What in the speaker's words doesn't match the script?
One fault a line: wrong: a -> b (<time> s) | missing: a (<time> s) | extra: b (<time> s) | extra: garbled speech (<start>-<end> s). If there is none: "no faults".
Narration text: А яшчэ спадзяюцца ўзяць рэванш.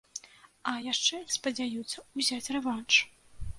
no faults